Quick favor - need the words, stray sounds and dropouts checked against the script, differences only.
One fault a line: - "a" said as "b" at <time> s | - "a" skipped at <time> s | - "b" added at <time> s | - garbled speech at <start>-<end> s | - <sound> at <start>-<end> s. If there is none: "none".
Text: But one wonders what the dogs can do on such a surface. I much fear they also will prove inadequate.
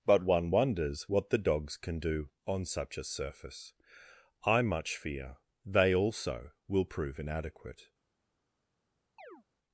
- chirp at 9.2-9.4 s